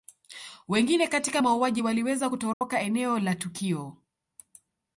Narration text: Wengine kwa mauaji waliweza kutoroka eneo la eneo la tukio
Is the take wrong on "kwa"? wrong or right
wrong